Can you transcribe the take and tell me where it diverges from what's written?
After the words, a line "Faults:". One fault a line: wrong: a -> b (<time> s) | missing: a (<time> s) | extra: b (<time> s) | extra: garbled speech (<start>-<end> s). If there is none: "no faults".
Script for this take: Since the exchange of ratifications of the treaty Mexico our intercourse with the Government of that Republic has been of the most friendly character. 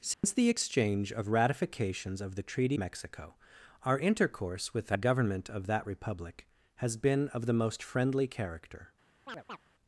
Since the exchange of ratifications of the treaty Mexico our intercourse with the Government of that Republic has been of the most friendly character.
Faults:
no faults